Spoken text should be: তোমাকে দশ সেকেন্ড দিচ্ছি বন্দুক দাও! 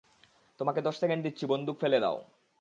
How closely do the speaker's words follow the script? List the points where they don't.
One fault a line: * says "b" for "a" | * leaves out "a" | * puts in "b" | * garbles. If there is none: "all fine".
* puts in "ফেলে"